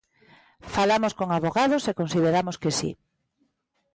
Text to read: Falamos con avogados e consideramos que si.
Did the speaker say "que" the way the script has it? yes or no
yes